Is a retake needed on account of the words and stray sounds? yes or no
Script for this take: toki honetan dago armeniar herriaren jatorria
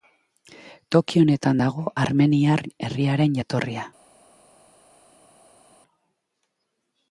no